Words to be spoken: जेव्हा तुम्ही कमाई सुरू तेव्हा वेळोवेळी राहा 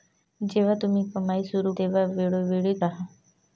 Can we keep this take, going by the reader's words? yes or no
yes